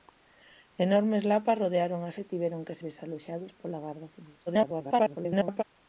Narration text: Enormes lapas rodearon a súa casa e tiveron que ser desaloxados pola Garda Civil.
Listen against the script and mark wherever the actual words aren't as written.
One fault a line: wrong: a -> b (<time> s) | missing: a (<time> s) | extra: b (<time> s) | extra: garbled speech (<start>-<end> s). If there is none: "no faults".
missing: súa casa (2.1 s)
missing: ser (2.8 s)
extra: garbled speech (4.5-5.6 s)